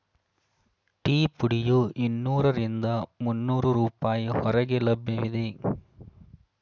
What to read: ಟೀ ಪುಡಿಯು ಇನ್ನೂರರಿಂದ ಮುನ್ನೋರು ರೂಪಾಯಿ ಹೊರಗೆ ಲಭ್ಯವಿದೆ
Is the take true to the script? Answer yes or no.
yes